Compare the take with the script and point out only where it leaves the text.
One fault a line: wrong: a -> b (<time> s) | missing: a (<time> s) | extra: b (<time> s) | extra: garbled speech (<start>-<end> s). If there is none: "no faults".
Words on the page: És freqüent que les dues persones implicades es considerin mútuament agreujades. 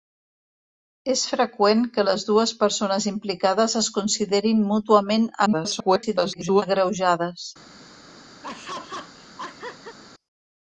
extra: garbled speech (5.5-6.6 s)